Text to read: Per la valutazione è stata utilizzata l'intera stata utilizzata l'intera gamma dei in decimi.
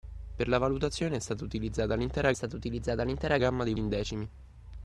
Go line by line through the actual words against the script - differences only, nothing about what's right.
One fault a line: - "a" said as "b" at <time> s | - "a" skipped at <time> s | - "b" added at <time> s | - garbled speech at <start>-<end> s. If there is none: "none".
none